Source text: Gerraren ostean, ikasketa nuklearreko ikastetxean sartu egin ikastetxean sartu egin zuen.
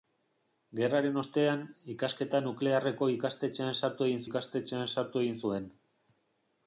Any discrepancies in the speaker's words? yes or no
no